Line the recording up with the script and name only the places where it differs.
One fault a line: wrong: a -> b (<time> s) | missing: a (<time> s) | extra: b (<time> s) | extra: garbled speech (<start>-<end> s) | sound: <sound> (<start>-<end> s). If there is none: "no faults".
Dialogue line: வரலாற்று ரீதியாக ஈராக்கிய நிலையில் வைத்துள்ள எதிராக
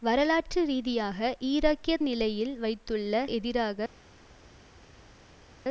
no faults